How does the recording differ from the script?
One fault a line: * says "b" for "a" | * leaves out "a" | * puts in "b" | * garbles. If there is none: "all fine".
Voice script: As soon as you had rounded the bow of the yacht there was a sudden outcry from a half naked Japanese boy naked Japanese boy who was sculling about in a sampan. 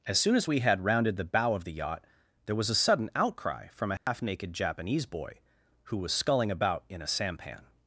* says "we" for "you"
* leaves out "naked Japanese boy"